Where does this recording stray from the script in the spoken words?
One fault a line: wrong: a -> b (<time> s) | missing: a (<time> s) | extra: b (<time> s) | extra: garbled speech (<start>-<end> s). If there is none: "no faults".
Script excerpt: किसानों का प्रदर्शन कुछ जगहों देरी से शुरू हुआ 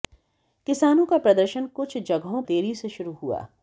no faults